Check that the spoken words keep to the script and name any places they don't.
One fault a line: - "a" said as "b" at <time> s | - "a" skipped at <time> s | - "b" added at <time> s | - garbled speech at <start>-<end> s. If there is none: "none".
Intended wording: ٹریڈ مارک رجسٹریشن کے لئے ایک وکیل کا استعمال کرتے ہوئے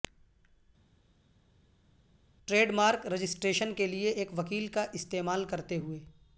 none